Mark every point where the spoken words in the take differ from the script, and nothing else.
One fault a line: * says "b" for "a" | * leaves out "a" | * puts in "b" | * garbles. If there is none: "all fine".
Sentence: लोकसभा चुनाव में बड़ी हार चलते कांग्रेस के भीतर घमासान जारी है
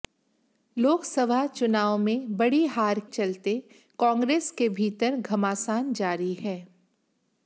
all fine